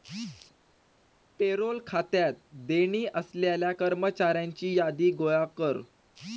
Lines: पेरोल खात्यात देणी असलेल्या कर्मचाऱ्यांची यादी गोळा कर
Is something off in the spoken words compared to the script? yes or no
no